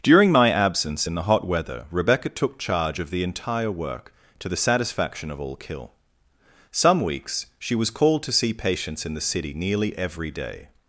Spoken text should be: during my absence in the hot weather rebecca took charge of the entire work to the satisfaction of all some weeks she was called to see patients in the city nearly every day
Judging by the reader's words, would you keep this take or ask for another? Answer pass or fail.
fail